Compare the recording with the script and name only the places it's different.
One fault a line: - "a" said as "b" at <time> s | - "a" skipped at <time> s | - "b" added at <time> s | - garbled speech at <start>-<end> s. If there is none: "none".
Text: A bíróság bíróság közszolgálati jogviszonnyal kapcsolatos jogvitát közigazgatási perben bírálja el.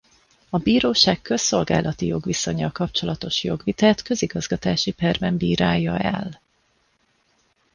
- "bíróság" skipped at 1.2 s